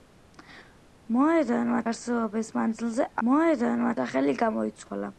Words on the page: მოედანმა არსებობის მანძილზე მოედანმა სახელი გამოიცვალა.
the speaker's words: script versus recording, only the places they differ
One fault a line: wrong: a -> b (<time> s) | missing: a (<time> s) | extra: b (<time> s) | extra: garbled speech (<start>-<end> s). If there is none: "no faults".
no faults